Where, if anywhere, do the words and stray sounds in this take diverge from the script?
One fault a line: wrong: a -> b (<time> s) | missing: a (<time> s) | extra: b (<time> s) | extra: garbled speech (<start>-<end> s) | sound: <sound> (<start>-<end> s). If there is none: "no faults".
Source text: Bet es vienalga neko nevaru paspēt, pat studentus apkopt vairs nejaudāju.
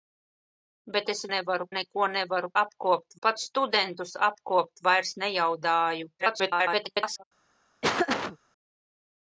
wrong: vienalga -> nevaru (1.3 s)
wrong: paspēt -> apkopt (2.6 s)
extra: garbled speech (6.2-7.2 s)
sound: laugh (7.8-8.4 s)